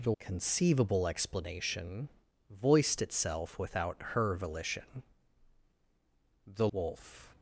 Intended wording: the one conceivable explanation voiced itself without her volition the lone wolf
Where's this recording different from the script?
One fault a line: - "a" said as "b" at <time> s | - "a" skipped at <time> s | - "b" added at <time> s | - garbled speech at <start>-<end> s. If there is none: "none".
- "one" skipped at 0.1 s
- "lone" skipped at 6.7 s